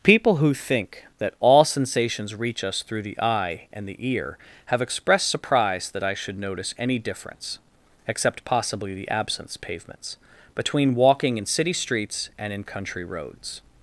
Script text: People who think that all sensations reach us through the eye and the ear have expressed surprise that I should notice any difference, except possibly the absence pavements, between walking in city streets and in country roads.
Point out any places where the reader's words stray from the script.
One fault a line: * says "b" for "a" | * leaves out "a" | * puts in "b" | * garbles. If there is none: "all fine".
all fine